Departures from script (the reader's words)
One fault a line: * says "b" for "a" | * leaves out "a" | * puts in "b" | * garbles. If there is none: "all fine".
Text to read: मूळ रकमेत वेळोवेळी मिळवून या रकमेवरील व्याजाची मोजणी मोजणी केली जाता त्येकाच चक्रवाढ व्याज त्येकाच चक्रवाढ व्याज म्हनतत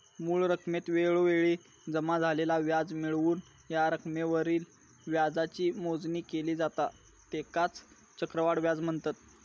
* puts in "जमा झालेला व्याज"
* leaves out "मोजणी"
* leaves out "त्येकाच चक्रवाढ व्याज"